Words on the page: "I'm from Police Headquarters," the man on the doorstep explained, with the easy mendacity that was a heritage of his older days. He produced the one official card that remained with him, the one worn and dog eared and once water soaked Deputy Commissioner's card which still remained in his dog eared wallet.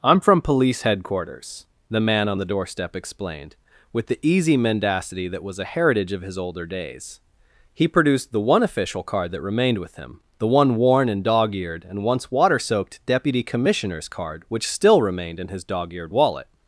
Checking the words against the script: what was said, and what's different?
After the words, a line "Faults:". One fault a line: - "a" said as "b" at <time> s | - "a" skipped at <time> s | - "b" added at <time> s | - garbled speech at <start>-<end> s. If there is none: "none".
"I'm from Police Headquarters," the man on the doorstep explained, with the easy mendacity that was a heritage of his older days. He produced the one official card that remained with him, the one worn and dog eared and once water soaked Deputy Commissioner's card which still remained in his dog eared wallet.
Faults:
none